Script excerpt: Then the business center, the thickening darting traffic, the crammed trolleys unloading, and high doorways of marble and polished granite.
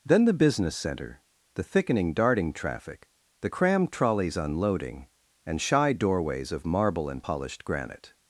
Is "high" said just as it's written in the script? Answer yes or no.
no